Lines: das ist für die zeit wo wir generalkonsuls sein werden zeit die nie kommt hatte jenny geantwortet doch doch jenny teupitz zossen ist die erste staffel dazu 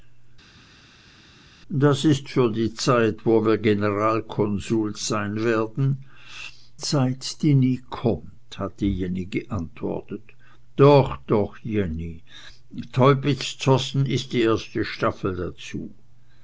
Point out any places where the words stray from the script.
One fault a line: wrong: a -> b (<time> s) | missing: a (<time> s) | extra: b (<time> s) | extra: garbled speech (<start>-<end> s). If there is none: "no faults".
no faults